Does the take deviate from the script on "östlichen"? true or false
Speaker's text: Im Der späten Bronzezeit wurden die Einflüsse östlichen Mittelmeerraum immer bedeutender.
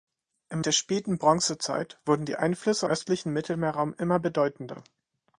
false